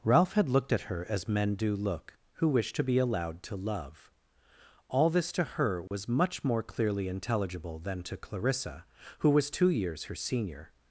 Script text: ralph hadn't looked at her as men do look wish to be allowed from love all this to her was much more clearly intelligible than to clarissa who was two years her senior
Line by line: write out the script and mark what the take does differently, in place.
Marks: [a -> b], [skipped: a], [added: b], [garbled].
ralph [hadn't -> had] looked at her as men do look [added: who] wish to be allowed [from -> to] love all this to her was much more clearly intelligible than to clarissa who was two years her senior